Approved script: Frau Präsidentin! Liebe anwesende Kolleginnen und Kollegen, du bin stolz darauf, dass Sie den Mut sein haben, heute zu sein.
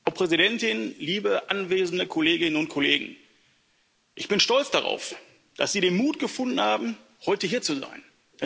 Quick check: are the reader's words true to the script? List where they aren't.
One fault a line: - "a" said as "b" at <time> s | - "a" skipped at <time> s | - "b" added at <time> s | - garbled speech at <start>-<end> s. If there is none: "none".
- "du" said as "ich" at 4.2 s
- "sein" said as "gefunden" at 6.2 s
- "hier" added at 7.5 s